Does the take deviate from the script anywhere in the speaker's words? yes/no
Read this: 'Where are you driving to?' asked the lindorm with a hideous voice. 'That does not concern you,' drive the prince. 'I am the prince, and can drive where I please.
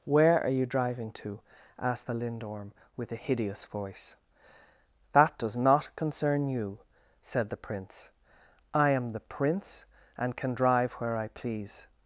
yes